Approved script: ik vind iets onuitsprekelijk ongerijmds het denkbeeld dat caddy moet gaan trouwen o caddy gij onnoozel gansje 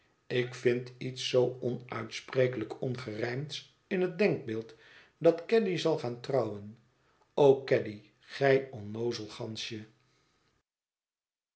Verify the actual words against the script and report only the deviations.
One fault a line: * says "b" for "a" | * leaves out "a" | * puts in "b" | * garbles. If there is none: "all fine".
* puts in "zoo"
* puts in "in"
* says "zal" for "moet"